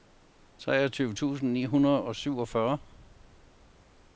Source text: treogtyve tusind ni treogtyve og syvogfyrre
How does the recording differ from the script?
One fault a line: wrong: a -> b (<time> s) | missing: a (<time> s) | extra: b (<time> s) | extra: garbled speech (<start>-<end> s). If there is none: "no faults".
wrong: treogtyve -> hundrede (1.7 s)